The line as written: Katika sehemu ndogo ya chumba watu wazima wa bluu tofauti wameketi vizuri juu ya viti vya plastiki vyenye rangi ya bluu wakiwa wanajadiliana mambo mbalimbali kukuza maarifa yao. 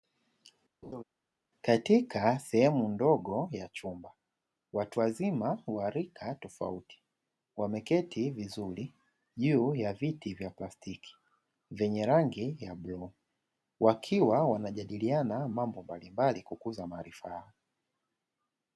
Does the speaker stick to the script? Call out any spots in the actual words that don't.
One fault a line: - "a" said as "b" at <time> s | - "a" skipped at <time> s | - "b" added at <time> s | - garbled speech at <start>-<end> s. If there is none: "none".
- "bluu" said as "rika" at 5.9 s